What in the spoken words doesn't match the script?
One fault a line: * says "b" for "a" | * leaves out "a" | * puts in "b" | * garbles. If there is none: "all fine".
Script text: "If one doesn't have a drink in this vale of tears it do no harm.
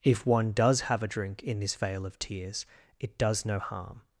* says "does" for "doesn't"
* says "does" for "do"